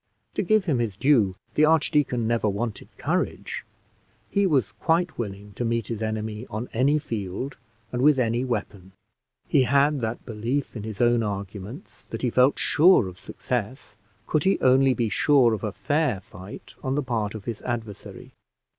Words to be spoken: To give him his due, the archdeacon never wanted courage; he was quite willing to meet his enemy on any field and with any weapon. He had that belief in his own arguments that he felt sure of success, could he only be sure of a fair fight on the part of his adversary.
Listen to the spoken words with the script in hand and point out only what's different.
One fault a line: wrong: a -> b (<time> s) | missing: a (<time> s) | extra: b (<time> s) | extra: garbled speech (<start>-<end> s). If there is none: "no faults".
no faults